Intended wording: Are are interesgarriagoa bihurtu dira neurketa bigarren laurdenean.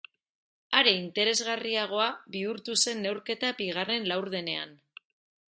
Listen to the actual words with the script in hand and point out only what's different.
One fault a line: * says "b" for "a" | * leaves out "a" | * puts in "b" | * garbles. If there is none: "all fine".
* leaves out "are"
* says "zen" for "dira"